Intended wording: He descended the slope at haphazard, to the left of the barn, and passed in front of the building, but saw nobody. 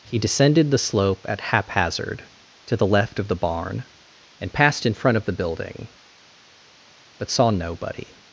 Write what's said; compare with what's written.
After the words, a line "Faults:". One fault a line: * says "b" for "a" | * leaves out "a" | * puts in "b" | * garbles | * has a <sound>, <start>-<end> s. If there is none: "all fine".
He descended the slope at haphazard, to the left of the barn, and passed in front of the building, but saw nobody.
Faults:
all fine